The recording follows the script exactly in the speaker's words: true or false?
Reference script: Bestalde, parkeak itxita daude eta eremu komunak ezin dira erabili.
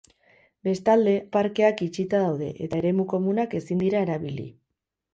true